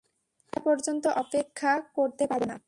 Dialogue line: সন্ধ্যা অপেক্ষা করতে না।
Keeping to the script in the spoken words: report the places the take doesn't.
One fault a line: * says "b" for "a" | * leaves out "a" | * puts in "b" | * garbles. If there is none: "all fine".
* puts in "পর্যন্ত"
* puts in "পারব"